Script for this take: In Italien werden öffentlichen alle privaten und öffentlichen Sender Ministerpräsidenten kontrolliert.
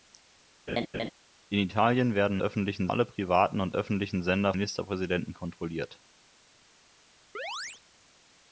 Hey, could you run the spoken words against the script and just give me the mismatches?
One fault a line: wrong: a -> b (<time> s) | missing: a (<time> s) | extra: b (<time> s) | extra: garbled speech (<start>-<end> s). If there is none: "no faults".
no faults